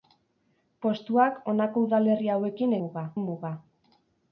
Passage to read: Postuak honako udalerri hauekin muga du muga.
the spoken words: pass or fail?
pass